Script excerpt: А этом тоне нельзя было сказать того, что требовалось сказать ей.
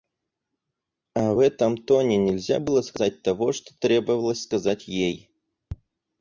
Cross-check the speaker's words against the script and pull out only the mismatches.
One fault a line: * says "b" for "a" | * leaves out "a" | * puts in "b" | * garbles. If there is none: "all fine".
all fine